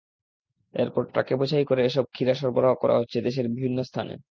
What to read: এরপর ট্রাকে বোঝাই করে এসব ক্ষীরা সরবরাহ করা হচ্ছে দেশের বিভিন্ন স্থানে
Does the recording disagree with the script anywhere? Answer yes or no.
no